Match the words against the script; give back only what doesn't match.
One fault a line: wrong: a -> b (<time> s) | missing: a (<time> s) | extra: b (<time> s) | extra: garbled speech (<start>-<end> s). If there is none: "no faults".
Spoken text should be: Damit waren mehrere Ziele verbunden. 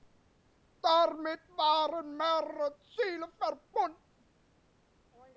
no faults